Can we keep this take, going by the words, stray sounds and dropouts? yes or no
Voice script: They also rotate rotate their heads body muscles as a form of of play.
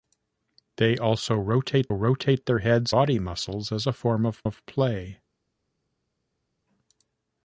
yes